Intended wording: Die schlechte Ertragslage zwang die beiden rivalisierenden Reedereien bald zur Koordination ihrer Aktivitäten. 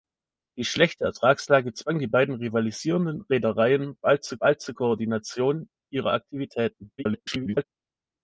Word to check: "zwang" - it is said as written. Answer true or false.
true